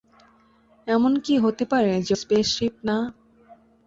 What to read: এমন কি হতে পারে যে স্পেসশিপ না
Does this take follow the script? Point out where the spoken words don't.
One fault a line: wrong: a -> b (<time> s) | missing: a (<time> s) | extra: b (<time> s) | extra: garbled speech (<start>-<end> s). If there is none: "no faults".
no faults